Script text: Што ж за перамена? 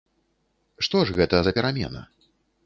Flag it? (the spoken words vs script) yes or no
yes